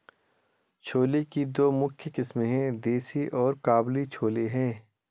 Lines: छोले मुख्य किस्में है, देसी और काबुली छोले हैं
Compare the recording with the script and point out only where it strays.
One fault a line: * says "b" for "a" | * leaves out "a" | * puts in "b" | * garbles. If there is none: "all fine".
* puts in "की दो"